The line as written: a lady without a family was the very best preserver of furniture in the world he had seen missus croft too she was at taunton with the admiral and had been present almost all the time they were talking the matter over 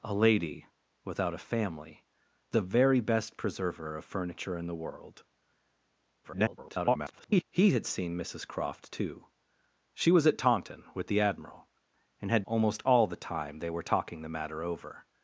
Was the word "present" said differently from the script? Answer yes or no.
yes